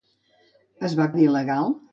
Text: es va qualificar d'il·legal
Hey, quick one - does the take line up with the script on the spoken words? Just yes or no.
no